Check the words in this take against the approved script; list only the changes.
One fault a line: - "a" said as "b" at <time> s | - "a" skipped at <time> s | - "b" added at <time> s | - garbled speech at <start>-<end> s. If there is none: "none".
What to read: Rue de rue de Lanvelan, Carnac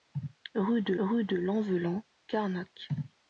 none